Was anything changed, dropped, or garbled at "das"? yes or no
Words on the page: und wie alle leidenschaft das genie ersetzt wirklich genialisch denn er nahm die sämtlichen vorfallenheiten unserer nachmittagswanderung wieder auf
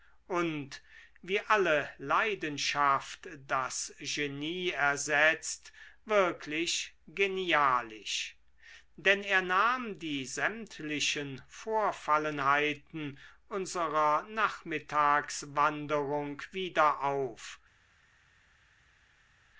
no